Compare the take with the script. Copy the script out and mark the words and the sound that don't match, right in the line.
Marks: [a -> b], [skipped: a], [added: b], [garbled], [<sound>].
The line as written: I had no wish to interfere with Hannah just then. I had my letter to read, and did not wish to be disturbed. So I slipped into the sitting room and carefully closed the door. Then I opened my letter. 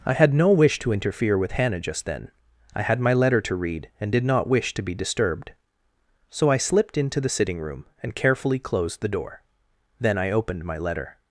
I had no wish to interfere with Hannah just then. I had my letter to read, and did not wish to be disturbed. So I slipped into the sitting room and carefully closed the door. Then I opened my letter.